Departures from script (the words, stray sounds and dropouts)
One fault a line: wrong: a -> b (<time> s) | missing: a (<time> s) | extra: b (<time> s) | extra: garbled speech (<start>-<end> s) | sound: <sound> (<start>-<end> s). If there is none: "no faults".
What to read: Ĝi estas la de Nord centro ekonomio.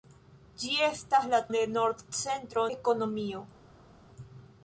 no faults